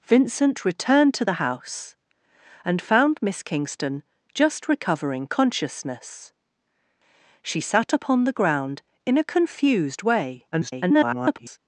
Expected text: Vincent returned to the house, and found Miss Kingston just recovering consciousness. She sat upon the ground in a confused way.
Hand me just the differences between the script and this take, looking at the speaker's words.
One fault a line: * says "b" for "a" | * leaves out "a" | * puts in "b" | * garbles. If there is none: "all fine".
* garbles